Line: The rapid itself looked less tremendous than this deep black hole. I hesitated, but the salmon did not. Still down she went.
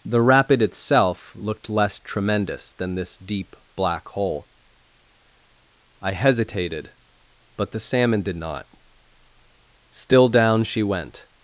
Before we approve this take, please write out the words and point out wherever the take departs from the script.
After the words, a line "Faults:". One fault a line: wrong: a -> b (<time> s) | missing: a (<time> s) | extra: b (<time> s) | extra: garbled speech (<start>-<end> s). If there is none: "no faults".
The rapid itself looked less tremendous than this deep black hole. I hesitated, but the salmon did not. Still down she went.
Faults:
no faults